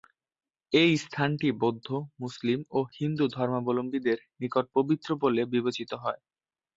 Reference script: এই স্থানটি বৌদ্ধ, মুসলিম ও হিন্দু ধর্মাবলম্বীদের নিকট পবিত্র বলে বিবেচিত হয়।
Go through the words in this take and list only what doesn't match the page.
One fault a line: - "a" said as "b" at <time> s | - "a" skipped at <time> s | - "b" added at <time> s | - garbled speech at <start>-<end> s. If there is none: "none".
none